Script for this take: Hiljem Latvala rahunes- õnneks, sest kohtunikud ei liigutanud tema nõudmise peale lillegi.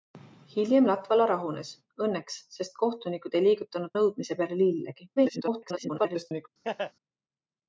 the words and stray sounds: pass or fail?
fail